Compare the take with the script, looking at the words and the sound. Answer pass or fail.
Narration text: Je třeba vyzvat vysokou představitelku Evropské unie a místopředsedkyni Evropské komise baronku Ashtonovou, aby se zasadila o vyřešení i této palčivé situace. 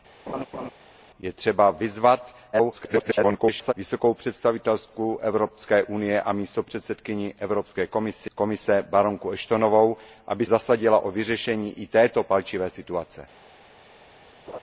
fail